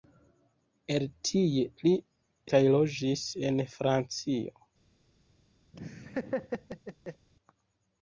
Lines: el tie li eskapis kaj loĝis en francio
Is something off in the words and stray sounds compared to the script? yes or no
yes